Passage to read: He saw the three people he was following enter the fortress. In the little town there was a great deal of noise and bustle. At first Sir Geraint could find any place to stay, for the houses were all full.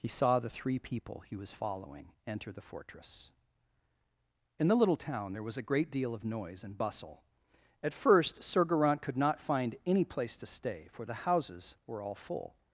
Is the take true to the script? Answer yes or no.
no